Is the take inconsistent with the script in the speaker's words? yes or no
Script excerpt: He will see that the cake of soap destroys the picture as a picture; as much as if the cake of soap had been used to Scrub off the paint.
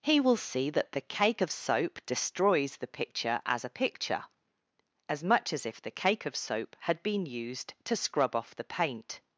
no